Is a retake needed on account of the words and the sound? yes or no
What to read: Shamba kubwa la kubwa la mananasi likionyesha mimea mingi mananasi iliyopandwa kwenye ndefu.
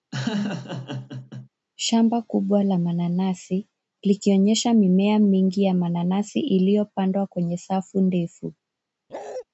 yes